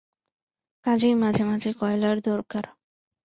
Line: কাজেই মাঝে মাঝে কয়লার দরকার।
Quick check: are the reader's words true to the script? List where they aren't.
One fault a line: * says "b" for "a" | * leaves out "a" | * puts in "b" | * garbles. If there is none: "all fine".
all fine